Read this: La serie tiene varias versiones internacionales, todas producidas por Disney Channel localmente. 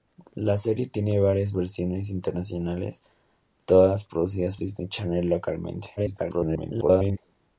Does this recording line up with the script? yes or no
no